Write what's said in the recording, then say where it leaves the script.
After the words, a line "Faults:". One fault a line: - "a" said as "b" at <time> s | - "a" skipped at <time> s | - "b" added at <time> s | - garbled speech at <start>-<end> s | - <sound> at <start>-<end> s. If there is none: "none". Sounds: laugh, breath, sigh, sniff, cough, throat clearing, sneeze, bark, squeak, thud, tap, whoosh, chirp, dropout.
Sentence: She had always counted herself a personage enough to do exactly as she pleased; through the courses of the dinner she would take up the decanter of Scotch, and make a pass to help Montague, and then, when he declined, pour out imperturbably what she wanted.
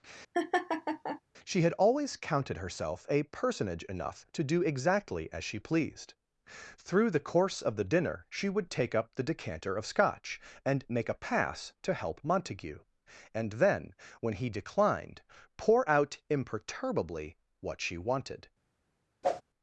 She had always counted herself a personage enough to do exactly as she pleased; through the course of the dinner she would take up the decanter of Scotch, and make a pass to help Montague, and then, when he declined, pour out imperturbably what she wanted.
Faults:
- laugh at 0.3-1.2 s
- "courses" said as "course" at 7.2 s
- whoosh at 19.2-19.4 s